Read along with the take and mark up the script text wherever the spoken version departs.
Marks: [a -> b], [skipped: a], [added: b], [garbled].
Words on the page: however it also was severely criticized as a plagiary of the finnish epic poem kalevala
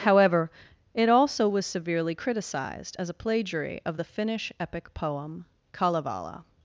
however it also was severely criticized as a plagiary of the finnish epic poem kalevala